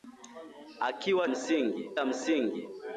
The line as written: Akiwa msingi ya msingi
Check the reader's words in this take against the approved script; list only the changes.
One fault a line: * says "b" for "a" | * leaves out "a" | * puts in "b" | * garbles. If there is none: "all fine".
all fine